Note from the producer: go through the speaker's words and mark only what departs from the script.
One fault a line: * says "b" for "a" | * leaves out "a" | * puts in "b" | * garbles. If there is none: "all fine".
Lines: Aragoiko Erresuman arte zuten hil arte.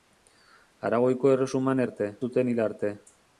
all fine